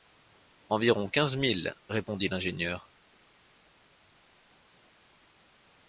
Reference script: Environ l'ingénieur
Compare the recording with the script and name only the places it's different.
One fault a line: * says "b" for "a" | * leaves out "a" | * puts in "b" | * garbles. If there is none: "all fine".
* puts in "quinze milles répondit"